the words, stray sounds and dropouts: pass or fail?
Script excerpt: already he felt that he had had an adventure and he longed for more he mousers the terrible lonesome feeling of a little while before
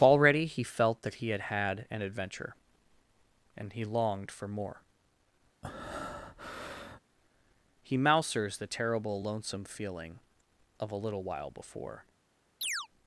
fail